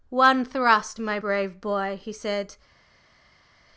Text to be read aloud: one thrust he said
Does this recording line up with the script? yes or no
no